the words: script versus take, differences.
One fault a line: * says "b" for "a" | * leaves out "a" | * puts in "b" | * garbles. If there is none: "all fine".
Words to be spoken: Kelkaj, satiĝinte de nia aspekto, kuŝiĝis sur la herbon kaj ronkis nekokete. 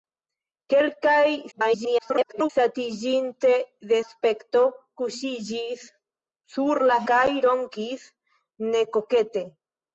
* garbles
* leaves out "nia"
* leaves out "herbon"